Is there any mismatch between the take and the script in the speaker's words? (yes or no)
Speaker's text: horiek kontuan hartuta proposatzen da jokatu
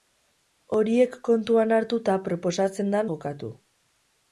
no